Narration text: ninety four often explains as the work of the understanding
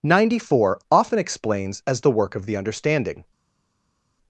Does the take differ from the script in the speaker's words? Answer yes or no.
no